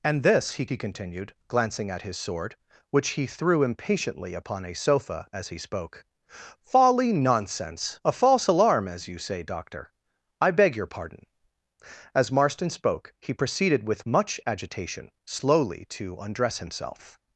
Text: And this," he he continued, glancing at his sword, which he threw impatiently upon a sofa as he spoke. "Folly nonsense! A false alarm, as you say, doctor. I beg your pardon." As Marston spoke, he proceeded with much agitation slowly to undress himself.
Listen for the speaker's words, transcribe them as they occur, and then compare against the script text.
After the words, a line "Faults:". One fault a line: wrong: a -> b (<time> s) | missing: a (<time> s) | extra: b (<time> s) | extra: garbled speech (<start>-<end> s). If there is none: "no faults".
And this," he he continued, glancing at his sword, which he threw impatiently upon a sofa as he spoke. "Folly nonsense! A false alarm, as you say, doctor. I beg your pardon." As Marston spoke, he proceeded with much agitation slowly to undress himself.
Faults:
no faults